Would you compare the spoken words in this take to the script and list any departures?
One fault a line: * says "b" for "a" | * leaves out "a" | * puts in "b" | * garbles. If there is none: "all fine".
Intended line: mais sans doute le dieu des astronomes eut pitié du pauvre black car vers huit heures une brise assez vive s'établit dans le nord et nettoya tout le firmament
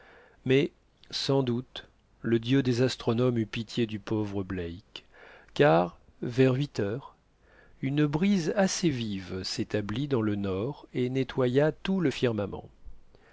all fine